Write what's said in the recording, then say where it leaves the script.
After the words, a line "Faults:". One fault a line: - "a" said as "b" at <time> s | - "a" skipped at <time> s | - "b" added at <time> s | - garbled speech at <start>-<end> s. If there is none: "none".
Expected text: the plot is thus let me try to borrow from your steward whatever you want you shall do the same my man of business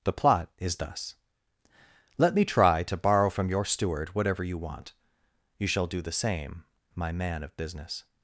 the plot is thus let me try to borrow from your steward whatever you want you shall do the same my man of business
Faults:
none